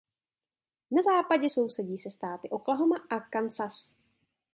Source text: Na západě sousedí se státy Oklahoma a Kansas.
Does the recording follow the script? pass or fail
pass